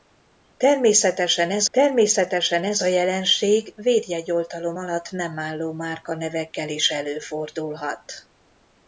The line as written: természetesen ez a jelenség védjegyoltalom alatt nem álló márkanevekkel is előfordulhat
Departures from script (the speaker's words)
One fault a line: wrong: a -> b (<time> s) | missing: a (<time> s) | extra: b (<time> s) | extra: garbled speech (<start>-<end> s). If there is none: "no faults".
extra: természetesen ez (1.7 s)